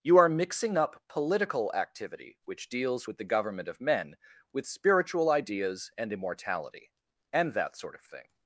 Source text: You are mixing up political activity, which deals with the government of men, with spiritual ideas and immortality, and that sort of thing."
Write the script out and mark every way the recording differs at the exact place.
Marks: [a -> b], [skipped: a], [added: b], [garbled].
You are mixing up political activity, which deals with the government of men, with spiritual ideas and immortality, and that sort of thing."